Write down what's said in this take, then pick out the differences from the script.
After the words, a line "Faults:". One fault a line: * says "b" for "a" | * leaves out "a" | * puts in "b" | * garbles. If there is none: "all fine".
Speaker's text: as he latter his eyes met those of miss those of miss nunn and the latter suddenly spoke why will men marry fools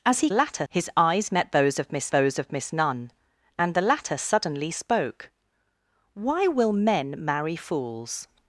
as he latter his eyes met those of miss those of miss nunn and the latter suddenly spoke why will men marry fools
Faults:
all fine